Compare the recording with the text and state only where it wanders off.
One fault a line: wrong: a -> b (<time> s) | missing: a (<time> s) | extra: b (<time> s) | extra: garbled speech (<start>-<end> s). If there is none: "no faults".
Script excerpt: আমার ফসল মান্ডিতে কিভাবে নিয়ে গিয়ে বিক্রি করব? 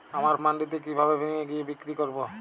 missing: ফসল (0.3 s)